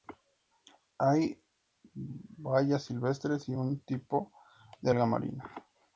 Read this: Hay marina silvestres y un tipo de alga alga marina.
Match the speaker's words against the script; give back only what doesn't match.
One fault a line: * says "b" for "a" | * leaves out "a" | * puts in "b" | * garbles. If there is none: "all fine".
* says "bayas" for "marina"
* leaves out "alga"